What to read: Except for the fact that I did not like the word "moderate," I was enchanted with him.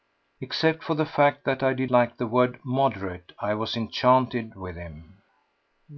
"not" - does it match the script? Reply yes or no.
no